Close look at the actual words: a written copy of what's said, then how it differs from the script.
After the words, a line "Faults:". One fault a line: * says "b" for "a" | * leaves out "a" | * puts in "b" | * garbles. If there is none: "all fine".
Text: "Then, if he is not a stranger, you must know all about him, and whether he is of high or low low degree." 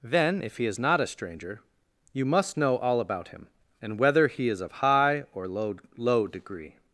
"Then, if he is not a stranger, you must know all about him, and whether he is of high or low low degree."
Faults:
all fine